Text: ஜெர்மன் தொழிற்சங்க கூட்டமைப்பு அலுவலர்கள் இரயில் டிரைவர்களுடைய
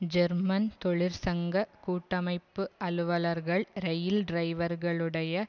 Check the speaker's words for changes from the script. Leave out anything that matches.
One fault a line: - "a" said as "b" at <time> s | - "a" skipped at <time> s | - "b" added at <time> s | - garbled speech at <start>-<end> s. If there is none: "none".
none